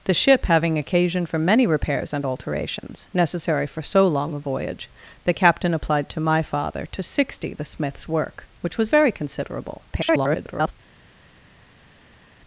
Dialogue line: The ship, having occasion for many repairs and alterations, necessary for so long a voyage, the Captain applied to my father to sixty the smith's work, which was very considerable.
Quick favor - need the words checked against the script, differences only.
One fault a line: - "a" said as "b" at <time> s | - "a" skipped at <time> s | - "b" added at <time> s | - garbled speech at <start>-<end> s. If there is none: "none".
- garbled speech at 9.9-10.7 s